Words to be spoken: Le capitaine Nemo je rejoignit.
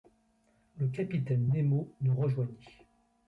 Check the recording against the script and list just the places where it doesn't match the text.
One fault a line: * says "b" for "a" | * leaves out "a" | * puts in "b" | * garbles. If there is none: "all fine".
* says "nous" for "je"